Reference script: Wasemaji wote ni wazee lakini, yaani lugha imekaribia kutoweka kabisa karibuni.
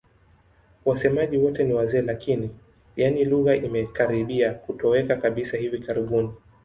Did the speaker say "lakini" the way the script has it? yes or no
yes